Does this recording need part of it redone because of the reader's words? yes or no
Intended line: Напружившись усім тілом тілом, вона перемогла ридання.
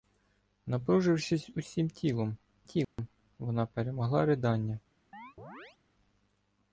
no